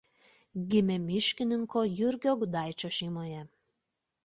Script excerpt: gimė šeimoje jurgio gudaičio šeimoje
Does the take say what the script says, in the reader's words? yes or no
no